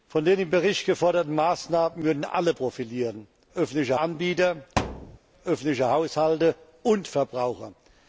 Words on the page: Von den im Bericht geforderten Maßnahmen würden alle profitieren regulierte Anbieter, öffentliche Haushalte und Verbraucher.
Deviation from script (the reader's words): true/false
true